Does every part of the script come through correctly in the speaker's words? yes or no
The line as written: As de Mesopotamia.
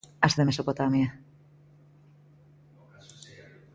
yes